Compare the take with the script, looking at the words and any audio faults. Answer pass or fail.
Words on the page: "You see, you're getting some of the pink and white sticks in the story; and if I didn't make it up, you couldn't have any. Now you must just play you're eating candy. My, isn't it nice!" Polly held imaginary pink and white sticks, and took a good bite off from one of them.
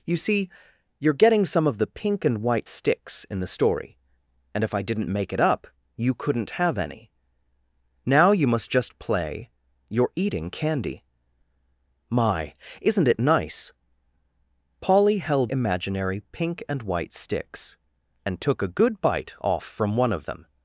pass